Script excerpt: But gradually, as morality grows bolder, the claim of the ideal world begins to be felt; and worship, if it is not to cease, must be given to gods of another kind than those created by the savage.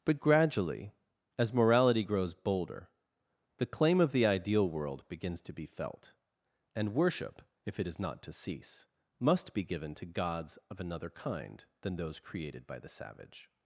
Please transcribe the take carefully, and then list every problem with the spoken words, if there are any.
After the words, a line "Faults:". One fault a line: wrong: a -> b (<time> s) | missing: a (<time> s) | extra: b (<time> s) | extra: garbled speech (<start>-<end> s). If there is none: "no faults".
But gradually, as morality grows bolder, the claim of the ideal world begins to be felt; and worship, if it is not to cease, must be given to gods of another kind than those created by the savage.
Faults:
no faults